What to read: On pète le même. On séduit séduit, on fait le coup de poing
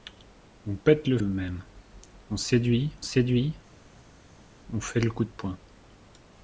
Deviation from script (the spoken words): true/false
false